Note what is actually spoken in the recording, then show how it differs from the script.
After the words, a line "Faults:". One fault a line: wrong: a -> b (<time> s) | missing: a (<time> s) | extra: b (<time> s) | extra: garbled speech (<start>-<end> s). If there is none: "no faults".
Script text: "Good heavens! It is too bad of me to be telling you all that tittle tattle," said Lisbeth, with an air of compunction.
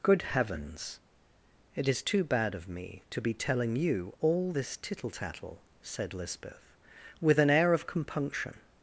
"Good heavens! It is too bad of me to be telling you all this tittle tattle," said Lisbeth, with an air of compunction.
Faults:
wrong: that -> this (4.5 s)